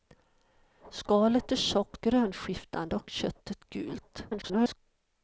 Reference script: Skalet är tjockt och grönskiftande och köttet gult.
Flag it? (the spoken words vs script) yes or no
yes